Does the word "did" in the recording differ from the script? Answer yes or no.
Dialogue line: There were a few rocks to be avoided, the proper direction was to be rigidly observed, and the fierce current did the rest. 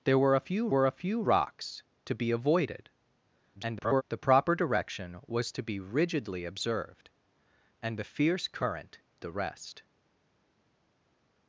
yes